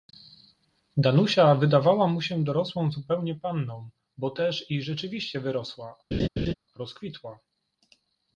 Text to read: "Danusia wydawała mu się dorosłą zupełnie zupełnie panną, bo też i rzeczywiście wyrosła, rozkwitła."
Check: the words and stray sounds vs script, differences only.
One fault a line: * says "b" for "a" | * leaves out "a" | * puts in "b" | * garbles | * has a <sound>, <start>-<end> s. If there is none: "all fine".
* leaves out "zupełnie"
* has a laugh, 6.1-6.5 s